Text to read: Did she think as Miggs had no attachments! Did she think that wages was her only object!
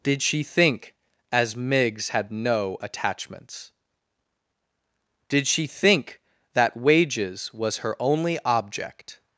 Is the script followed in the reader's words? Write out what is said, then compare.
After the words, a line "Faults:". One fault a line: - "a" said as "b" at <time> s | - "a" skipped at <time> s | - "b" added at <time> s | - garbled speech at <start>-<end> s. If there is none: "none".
Did she think as Miggs had no attachments! Did she think that wages was her only object!
Faults:
none